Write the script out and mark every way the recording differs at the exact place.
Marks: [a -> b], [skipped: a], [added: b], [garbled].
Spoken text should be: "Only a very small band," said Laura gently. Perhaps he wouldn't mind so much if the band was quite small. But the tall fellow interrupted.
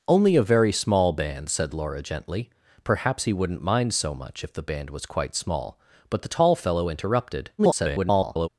"Only a very small band," said Laura gently. Perhaps he wouldn't mind so much if the band was quite small. But the tall fellow interrupted. [garbled]